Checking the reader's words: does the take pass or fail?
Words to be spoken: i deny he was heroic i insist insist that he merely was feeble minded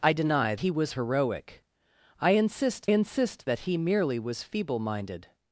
pass